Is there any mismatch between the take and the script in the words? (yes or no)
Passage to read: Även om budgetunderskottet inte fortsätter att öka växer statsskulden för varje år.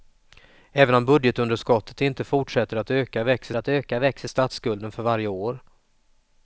yes